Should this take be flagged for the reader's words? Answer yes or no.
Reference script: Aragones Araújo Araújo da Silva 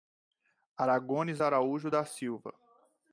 yes